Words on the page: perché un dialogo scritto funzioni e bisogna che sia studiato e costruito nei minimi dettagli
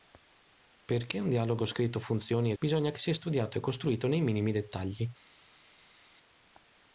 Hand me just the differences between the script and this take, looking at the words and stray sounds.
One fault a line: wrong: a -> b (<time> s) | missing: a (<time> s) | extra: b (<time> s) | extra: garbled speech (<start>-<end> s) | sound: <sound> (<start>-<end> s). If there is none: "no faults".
no faults